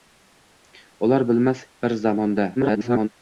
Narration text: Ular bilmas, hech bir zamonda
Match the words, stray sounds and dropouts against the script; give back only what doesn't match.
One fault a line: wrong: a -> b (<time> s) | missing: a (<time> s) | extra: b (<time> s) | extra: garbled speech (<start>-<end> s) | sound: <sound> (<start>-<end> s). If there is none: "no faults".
missing: hech (1.6 s)
extra: garbled speech (2.6-3.1 s)